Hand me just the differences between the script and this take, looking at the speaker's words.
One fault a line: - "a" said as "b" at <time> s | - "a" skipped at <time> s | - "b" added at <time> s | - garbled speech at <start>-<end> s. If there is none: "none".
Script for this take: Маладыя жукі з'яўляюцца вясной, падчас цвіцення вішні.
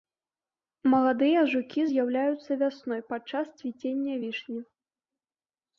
none